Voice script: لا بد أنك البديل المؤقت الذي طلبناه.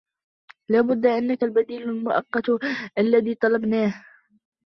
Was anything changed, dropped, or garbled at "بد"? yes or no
no